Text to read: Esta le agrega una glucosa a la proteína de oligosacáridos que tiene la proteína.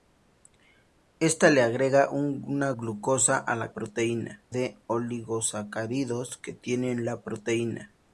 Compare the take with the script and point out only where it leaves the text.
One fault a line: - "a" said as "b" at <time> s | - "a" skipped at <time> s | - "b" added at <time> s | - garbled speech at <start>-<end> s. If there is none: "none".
none